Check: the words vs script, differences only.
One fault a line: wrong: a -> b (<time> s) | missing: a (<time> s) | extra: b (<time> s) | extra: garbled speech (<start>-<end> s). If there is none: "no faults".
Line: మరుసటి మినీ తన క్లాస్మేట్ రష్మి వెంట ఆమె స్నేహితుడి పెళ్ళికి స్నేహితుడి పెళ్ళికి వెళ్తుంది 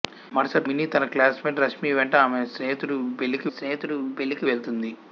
no faults